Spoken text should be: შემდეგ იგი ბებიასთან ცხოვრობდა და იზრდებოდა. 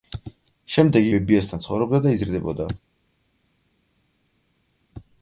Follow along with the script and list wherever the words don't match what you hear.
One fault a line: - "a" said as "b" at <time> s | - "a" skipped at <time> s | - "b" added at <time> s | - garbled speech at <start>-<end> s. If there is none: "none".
- "იგი" skipped at 1.1 s